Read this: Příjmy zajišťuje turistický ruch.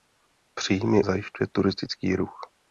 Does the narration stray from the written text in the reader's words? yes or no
no